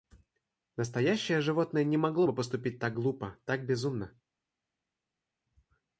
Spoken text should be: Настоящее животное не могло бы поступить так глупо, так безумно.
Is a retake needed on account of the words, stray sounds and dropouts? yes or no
no